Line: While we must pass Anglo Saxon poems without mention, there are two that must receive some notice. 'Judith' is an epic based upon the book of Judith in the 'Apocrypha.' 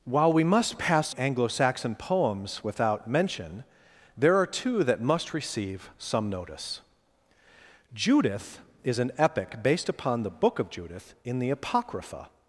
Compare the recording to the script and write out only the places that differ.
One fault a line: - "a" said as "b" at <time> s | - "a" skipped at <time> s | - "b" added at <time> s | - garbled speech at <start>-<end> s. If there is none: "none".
none